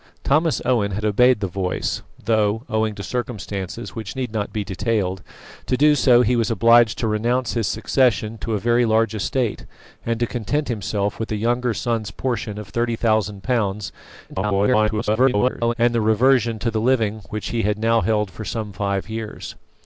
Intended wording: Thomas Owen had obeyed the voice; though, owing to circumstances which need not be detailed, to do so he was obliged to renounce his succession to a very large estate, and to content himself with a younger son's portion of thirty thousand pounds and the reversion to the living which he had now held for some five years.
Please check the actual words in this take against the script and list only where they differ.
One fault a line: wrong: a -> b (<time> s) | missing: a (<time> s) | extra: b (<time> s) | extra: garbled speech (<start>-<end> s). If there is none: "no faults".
extra: garbled speech (14.3-15.7 s)